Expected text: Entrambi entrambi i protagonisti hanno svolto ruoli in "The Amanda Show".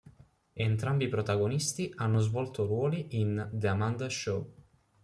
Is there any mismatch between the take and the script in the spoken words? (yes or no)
yes